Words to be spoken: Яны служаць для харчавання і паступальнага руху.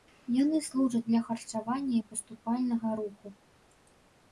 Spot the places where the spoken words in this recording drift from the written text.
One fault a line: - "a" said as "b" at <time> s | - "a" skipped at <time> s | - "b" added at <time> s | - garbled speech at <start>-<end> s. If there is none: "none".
none